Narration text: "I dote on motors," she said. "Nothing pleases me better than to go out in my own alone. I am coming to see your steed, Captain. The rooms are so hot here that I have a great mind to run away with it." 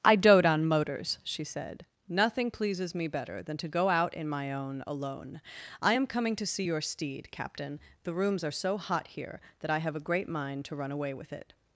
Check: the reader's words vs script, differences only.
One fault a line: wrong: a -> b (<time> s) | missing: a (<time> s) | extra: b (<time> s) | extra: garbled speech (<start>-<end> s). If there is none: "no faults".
no faults